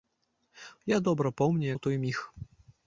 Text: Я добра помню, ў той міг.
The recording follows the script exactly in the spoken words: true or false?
true